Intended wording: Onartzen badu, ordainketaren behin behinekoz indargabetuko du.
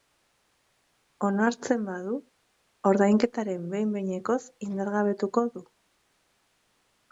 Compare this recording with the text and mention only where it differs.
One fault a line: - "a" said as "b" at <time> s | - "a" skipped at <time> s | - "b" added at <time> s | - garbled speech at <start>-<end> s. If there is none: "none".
none